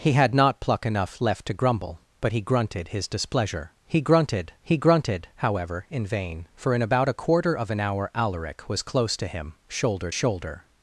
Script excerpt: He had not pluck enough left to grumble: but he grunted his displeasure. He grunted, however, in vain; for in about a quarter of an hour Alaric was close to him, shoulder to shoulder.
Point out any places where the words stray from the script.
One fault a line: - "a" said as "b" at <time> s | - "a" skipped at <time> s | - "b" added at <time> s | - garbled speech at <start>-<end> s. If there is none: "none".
- "he grunted" added at 4.6 s
- "to" skipped at 10.1 s